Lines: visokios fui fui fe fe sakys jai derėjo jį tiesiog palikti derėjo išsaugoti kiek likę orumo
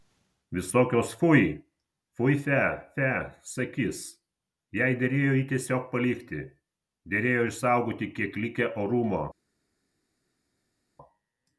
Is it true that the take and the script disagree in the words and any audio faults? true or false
false